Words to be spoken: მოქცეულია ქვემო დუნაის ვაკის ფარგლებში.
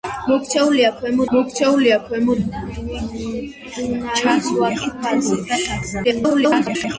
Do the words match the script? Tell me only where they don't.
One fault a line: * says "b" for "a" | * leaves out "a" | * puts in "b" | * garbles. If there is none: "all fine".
* puts in "მოქცეულია ქვემო"
* garbles